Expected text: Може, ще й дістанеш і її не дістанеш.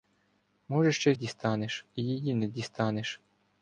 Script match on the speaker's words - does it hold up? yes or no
yes